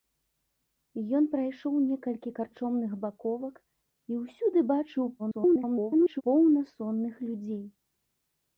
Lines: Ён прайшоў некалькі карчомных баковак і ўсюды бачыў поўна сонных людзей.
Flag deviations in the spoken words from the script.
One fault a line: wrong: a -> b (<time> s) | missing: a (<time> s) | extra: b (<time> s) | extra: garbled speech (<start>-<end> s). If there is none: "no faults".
extra: garbled speech (5.2-6.2 s)